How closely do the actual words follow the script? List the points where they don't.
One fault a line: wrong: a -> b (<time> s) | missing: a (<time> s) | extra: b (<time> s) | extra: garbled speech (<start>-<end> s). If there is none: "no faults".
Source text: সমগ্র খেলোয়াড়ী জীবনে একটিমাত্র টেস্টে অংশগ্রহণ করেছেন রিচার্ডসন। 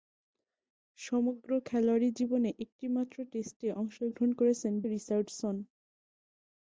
no faults